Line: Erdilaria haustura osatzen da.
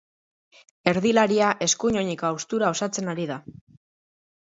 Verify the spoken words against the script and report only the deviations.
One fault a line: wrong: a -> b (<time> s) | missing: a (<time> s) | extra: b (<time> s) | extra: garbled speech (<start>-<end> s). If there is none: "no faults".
extra: eskuin oineko (1.7 s)
extra: ari (3.2 s)